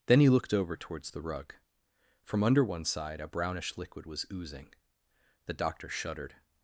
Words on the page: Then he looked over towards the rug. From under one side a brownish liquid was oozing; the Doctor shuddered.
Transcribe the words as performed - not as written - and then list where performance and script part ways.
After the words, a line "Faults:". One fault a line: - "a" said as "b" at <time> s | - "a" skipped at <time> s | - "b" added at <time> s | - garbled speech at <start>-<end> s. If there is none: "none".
Then he looked over towards the rug. From under one side a brownish liquid was oozing; the Doctor shuddered.
Faults:
none